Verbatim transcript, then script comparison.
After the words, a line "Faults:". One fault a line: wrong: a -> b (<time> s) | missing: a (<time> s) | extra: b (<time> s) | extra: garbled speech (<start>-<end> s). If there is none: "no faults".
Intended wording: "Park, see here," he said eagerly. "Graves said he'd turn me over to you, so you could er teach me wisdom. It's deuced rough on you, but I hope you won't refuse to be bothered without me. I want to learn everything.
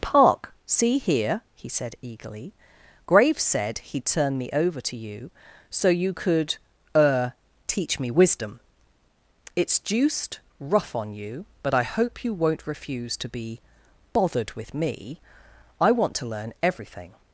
"Park, see here," he said eagerly. "Graves said he'd turn me over to you, so you could er teach me wisdom. It's deuced rough on you, but I hope you won't refuse to be bothered with me. I want to learn everything.
Faults:
wrong: without -> with (14.5 s)